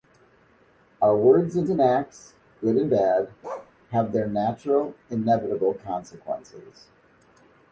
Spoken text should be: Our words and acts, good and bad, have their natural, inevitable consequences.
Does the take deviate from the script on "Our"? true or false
false